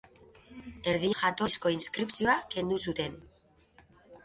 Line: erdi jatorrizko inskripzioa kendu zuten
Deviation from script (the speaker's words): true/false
false